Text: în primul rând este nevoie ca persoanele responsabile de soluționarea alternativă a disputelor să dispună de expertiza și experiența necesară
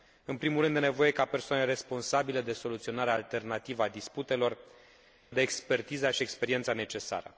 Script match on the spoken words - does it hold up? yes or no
no